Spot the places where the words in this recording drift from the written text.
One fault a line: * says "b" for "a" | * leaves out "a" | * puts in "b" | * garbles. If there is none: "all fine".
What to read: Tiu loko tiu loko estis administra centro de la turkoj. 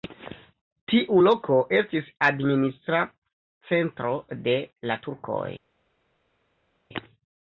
* leaves out "tiu loko"